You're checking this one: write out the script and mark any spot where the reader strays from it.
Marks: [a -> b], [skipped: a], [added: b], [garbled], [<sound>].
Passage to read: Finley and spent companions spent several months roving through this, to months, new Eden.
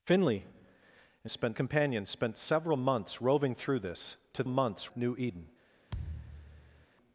Finley and spent companions spent several months roving through this, to months, new Eden. [thud]